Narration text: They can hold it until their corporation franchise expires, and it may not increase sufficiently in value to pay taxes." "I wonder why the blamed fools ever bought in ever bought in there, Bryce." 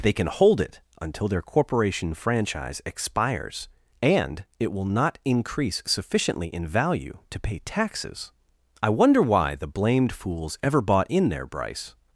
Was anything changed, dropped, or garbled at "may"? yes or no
yes